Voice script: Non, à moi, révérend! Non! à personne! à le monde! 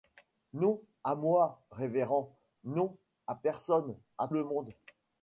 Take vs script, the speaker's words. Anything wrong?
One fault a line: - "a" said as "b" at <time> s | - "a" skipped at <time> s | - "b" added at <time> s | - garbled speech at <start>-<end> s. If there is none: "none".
none